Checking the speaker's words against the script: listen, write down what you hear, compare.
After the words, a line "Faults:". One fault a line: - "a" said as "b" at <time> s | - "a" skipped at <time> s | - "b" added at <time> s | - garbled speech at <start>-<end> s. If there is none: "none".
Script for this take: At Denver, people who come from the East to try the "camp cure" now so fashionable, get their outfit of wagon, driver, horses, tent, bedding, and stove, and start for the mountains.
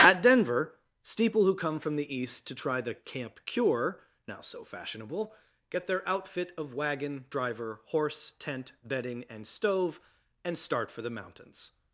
At Denver, steeple who come from the East to try the "camp cure" now so fashionable, get their outfit of wagon, driver, horse, tent, bedding, and stove, and start for the mountains.
Faults:
- "people" said as "steeple" at 1.0 s
- "horses" said as "horse" at 7.8 s